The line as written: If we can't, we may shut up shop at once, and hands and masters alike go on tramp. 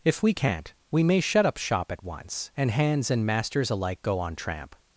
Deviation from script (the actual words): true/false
false